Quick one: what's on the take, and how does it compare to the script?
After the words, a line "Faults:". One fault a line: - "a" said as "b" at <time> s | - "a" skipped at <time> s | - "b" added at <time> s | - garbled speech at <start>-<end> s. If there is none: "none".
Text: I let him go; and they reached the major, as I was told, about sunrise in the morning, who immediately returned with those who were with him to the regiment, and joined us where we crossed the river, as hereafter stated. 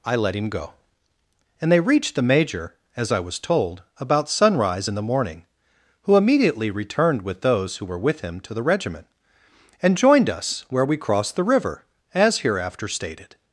I let him go; and they reached the major, as I was told, about sunrise in the morning, who immediately returned with those who were with him to the regiment, and joined us where we crossed the river, as hereafter stated.
Faults:
none